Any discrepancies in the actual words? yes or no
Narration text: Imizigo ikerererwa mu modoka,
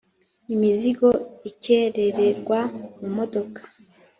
no